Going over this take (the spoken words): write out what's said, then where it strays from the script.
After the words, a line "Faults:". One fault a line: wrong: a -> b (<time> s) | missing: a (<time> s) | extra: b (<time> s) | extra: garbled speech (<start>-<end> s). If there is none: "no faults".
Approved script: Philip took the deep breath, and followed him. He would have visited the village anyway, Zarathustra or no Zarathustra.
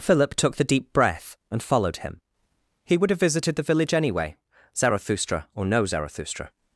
Philip took the deep breath, and followed him. He would have visited the village anyway, Zarathustra or no Zarathustra.
Faults:
no faults